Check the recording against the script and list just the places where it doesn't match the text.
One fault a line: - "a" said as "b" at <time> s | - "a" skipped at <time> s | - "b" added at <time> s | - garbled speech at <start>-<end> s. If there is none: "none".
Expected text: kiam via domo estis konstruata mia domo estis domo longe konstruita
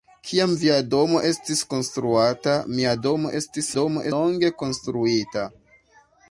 none